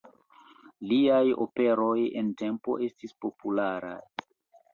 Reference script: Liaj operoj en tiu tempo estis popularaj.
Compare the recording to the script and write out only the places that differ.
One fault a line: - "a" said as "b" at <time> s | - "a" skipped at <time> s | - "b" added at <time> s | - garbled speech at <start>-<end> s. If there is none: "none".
- "tiu" skipped at 2.3 s